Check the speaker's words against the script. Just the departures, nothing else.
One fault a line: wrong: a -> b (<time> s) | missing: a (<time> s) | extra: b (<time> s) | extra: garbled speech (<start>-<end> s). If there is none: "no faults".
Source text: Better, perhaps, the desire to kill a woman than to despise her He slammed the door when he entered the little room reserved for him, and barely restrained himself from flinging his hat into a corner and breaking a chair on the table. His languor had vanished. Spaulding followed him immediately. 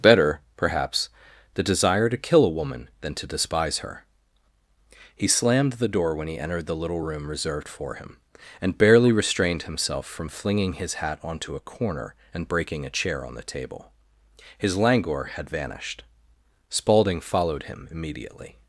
wrong: into -> onto (11.2 s)